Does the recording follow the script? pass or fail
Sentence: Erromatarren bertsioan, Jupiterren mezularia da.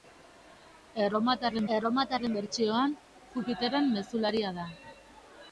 fail